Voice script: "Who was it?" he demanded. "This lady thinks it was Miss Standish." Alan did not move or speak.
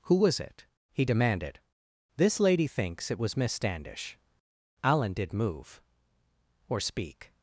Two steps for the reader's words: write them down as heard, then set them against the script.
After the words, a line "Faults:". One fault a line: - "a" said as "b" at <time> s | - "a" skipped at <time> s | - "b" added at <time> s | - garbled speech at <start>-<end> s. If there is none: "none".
"Who was it?" he demanded. "This lady thinks it was Miss Standish." Alan did move or speak.
Faults:
- "not" skipped at 5.3 s